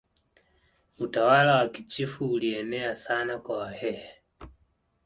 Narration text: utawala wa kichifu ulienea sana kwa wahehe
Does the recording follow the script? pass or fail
pass